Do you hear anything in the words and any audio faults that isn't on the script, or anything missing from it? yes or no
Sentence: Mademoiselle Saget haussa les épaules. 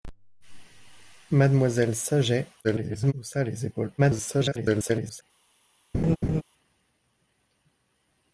yes